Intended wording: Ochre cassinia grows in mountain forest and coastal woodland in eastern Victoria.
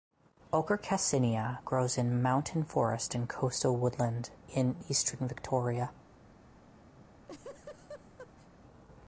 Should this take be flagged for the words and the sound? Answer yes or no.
yes